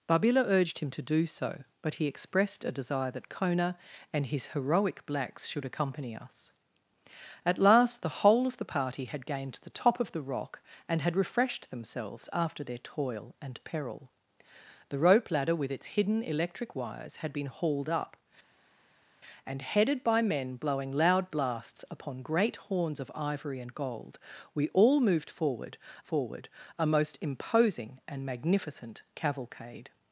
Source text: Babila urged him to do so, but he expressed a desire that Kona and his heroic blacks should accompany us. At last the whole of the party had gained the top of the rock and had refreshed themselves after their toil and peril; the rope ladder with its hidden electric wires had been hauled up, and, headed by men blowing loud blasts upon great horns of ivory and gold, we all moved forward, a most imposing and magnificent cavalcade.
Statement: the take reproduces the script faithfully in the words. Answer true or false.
false